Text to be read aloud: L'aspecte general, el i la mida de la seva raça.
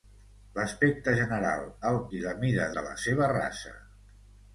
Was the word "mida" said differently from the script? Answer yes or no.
no